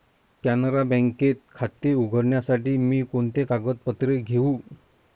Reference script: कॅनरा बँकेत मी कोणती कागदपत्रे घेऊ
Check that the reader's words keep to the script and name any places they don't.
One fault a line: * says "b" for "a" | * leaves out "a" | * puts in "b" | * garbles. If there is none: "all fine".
* puts in "खाते उघडण्यासाठी"